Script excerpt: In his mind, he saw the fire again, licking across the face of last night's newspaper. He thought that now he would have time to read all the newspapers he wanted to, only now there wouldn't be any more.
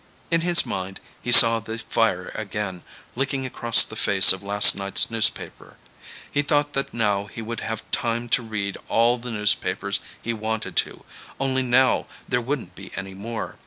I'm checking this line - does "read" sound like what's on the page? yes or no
yes